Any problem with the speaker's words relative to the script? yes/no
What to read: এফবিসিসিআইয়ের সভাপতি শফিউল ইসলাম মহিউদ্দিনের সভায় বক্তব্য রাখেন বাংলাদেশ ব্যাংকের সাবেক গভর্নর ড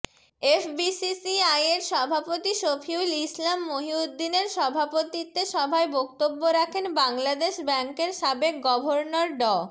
yes